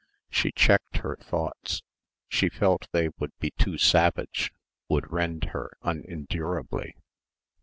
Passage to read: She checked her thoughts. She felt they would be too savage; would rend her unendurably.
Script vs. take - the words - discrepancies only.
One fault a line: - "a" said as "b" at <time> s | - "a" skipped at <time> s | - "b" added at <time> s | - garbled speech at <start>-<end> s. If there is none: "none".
none